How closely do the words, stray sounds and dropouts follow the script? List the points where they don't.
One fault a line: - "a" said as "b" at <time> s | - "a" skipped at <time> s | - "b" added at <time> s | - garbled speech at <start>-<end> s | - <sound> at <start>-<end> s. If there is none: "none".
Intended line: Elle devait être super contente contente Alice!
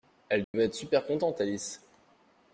- dropout at 0.4-0.5 s
- "contente" skipped at 1.4 s